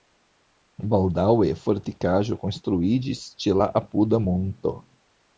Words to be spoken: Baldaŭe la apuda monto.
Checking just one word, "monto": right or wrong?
right